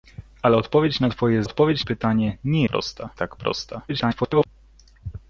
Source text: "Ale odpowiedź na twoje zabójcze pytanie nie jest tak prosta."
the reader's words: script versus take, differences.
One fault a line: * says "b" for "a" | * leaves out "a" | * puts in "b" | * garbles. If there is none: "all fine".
* says "odpowiedź" for "zabójcze"
* says "prosta" for "jest"
* garbles